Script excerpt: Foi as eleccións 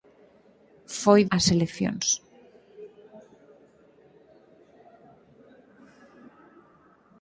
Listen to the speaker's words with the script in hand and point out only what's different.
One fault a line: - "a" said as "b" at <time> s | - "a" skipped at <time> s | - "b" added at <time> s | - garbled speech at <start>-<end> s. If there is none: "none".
none